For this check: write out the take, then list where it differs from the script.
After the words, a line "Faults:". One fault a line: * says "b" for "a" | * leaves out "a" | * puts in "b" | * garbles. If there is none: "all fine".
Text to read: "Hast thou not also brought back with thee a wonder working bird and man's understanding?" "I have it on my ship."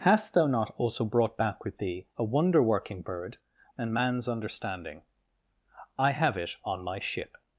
"Hast thou not also brought back with thee a wonder working bird and man's understanding?" "I have it on my ship."
Faults:
all fine